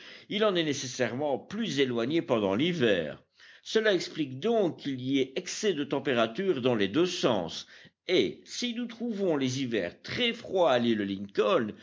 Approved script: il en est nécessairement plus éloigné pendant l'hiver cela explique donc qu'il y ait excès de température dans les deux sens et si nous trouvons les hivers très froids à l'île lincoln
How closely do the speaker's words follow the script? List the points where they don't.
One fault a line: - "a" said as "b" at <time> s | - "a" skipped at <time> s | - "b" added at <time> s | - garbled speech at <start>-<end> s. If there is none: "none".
none